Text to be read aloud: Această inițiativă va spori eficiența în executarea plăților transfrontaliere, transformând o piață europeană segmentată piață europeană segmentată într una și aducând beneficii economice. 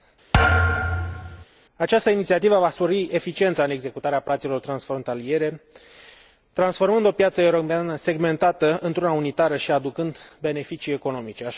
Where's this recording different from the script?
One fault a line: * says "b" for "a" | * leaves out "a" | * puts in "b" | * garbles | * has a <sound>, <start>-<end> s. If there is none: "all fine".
* has a thud, 0.3-1.4 s
* leaves out "piață europeană segmentată"
* puts in "unitară"